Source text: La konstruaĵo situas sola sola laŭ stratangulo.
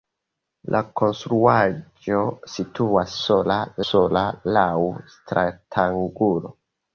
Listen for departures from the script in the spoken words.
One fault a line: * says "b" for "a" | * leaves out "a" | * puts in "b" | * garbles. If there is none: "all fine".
all fine